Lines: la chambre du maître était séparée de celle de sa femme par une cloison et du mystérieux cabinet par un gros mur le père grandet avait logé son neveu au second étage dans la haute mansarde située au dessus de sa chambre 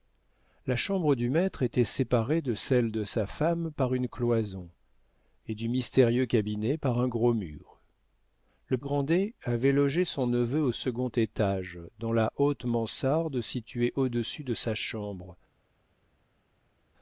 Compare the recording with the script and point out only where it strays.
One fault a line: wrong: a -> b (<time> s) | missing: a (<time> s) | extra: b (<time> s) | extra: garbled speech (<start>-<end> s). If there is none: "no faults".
missing: père (8.8 s)